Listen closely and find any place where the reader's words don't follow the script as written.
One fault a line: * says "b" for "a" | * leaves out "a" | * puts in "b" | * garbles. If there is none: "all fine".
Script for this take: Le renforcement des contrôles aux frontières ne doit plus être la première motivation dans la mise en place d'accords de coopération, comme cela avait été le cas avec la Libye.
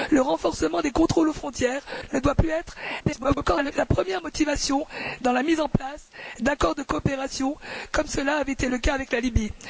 * garbles